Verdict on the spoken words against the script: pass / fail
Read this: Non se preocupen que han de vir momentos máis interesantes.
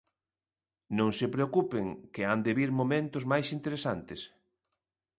pass